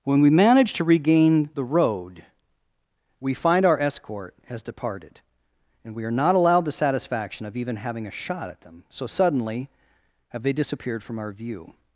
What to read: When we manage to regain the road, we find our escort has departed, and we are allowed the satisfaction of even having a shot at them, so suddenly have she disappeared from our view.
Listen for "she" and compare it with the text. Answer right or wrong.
wrong